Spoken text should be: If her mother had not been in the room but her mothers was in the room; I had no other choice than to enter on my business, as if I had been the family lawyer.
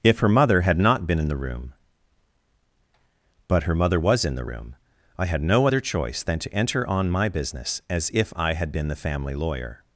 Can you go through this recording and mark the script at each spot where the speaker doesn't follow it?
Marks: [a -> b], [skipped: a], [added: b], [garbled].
If her mother had not been in the room but her [mothers -> mother] was in the room; I had no other choice than to enter on my business, as if I had been the family lawyer.